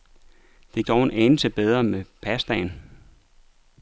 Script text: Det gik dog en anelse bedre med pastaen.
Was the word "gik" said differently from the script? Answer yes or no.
yes